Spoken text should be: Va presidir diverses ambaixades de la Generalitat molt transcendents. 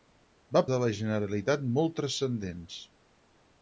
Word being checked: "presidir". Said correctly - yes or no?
no